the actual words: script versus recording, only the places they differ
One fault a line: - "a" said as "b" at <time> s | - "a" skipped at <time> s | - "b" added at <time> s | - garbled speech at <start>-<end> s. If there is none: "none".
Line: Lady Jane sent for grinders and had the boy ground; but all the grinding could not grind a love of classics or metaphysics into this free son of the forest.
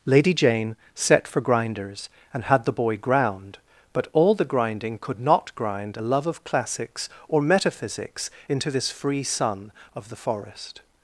- "sent" said as "set" at 0.9 s